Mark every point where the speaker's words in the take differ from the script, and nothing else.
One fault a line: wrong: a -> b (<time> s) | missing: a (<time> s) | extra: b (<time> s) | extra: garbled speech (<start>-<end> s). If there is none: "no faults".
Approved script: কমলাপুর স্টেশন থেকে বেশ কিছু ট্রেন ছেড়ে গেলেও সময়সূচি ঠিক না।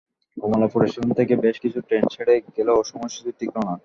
no faults